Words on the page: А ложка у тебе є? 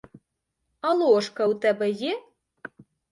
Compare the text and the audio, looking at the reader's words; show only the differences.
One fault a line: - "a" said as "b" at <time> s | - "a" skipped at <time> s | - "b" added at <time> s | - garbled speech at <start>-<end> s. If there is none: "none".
none